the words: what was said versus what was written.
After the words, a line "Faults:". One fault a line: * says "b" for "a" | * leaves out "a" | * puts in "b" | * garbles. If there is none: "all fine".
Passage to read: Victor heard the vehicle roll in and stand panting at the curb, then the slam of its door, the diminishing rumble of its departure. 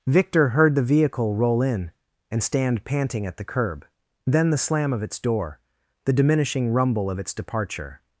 Victor heard the vehicle roll in and stand panting at the curb, then the slam of its door, the diminishing rumble of its departure.
Faults:
all fine